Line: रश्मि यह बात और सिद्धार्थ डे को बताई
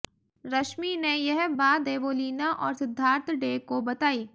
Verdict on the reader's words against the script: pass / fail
fail